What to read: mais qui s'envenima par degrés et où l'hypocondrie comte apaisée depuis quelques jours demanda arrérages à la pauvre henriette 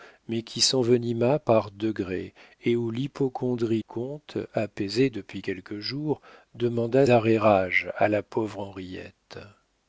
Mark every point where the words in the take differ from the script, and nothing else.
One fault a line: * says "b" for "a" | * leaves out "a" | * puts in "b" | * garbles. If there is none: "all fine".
all fine